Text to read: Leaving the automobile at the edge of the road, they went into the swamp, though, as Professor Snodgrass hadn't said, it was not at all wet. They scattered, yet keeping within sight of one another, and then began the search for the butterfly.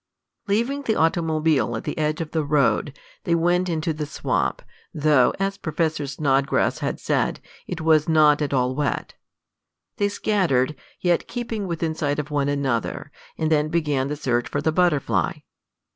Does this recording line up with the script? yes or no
no